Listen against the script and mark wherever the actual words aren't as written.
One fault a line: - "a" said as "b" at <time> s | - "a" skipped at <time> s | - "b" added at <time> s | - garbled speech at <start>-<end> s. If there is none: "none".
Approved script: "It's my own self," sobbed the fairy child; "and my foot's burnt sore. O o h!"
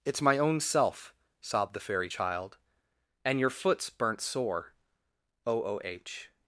- "my" said as "your" at 3.4 s